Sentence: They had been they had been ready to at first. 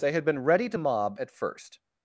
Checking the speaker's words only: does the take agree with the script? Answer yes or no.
no